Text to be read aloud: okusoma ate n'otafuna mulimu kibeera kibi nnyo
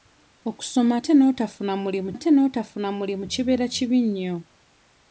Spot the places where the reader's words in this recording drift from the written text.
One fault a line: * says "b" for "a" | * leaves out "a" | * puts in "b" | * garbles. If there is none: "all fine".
* puts in "ate n'otafuna mulimu"